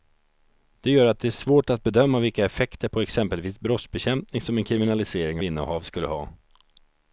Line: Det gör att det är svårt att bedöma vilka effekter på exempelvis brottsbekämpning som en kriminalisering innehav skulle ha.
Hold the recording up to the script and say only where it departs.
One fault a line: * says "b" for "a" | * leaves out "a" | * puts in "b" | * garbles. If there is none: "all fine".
all fine